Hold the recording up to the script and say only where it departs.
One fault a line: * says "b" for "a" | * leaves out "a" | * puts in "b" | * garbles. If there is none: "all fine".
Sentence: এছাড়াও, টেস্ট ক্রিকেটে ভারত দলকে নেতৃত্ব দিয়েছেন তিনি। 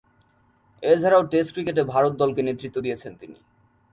all fine